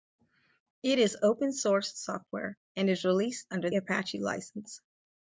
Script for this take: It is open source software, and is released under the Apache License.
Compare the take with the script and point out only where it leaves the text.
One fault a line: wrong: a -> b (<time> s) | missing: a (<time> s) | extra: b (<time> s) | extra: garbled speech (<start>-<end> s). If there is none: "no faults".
missing: the (3.7 s)